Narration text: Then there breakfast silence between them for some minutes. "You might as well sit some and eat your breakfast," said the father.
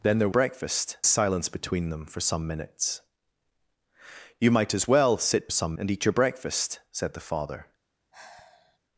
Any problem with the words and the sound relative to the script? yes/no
yes